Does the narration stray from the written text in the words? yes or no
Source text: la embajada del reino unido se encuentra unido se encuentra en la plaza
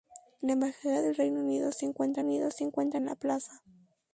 no